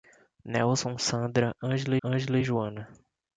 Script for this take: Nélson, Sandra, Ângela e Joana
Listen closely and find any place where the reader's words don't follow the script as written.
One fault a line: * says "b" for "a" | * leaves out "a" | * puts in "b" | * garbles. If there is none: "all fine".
* puts in "Ângela"